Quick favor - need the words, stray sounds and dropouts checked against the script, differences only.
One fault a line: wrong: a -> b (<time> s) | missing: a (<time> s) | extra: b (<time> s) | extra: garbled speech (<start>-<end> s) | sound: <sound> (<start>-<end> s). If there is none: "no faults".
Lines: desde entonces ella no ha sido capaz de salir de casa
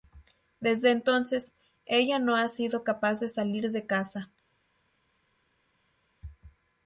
no faults